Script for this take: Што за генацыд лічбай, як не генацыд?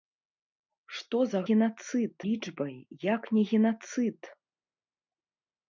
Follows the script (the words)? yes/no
yes